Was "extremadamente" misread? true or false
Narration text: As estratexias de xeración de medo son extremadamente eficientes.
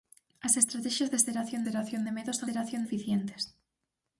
true